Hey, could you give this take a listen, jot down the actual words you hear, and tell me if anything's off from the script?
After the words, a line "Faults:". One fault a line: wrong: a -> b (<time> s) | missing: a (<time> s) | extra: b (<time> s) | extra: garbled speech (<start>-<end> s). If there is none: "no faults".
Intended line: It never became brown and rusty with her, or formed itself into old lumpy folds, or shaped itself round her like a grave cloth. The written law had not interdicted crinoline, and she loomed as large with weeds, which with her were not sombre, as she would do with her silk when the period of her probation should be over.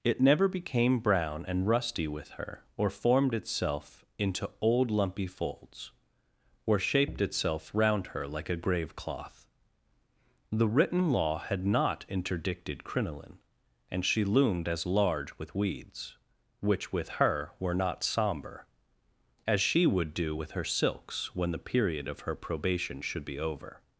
It never became brown and rusty with her, or formed itself into old lumpy folds, or shaped itself round her like a grave cloth. The written law had not interdicted crinoline, and she loomed as large with weeds, which with her were not sombre, as she would do with her silks when the period of her probation should be over.
Faults:
wrong: silk -> silks (20.7 s)